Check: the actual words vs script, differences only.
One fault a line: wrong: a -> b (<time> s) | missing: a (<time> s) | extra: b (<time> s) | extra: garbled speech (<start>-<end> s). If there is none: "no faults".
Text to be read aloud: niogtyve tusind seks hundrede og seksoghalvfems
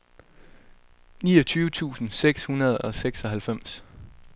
no faults